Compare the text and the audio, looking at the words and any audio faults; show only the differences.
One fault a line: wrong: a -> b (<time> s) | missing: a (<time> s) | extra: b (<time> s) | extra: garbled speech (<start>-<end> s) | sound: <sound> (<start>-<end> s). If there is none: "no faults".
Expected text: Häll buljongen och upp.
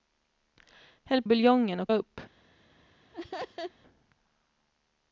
sound: laugh (3.1-3.7 s)